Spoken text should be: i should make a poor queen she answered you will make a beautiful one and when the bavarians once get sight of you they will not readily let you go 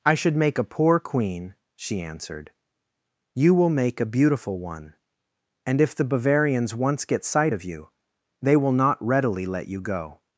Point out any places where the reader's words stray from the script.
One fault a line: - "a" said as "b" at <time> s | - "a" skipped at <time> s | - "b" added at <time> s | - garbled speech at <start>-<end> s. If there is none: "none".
- "when" said as "if" at 5.8 s